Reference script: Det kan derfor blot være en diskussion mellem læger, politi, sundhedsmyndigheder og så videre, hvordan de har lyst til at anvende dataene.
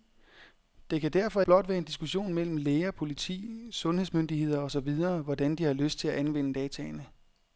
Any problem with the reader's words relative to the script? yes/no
no